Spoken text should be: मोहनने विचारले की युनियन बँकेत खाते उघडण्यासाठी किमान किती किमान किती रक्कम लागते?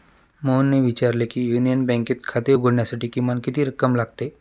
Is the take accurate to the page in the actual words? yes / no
no